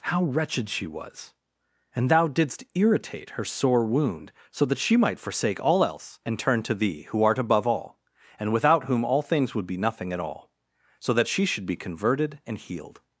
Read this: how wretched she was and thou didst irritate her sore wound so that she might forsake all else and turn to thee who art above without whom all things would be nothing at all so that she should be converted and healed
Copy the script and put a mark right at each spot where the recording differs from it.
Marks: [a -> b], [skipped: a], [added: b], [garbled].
how wretched she was and thou didst irritate her sore wound so that she might forsake all else and turn to thee who art above [added: all and] without whom all things would be nothing at all so that she should be converted and healed